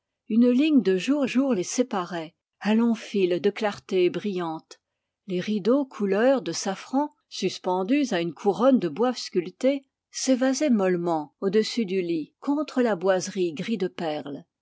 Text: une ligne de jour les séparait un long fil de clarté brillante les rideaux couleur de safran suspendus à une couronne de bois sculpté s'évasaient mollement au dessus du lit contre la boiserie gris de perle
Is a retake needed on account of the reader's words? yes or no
yes